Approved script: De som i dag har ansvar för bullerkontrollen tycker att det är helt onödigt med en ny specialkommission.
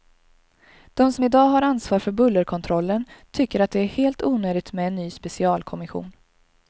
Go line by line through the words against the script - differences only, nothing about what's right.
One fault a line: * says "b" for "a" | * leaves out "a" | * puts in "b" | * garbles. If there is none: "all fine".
all fine